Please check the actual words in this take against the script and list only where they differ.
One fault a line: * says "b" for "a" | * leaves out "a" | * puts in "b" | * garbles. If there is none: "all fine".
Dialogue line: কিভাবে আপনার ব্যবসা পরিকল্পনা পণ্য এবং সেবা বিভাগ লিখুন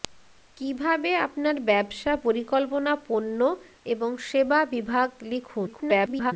* garbles